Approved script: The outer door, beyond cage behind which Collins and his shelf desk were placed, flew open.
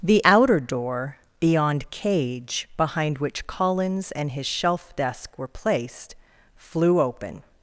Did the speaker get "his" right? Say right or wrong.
right